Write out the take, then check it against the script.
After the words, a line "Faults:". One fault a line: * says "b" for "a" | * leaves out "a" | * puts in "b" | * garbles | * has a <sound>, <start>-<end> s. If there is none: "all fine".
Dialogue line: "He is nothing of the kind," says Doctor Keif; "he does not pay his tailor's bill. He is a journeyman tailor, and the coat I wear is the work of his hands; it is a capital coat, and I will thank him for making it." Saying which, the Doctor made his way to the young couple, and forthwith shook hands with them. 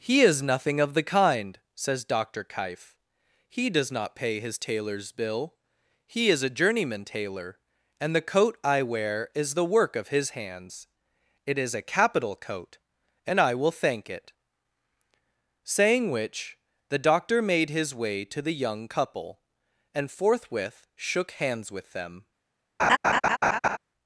"He is nothing of the kind," says Doctor Keif; "he does not pay his tailor's bill. He is a journeyman tailor, and the coat I wear is the work of his hands; it is a capital coat, and I will thank it." Saying which, the Doctor made his way to the young couple, and forthwith shook hands with them.
Faults:
* leaves out "him for making"
* has a laugh, 22.8-23.8 s